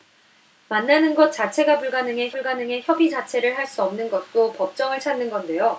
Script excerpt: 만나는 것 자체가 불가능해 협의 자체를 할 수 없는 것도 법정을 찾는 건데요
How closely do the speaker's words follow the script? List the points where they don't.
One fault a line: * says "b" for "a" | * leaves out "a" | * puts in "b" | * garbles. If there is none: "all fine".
* puts in "불가능해"